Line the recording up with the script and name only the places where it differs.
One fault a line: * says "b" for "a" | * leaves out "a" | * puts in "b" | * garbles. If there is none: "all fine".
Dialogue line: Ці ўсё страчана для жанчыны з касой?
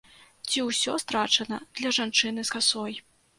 all fine